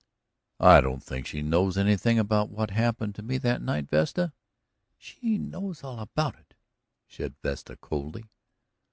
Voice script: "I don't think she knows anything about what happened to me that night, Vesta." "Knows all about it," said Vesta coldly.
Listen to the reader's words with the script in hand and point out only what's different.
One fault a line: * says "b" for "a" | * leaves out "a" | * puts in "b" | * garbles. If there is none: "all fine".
* puts in "She"